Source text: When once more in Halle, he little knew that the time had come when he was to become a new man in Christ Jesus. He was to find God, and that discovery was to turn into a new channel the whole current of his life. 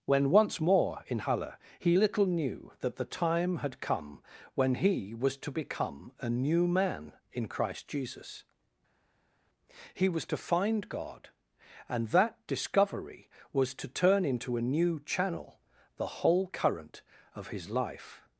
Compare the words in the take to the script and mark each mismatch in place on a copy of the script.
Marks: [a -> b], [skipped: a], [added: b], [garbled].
When once more in Halle, he little knew that the time had come when he was to become a new man in Christ Jesus. He was to find God, and that discovery was to turn into a new channel the whole current of his life.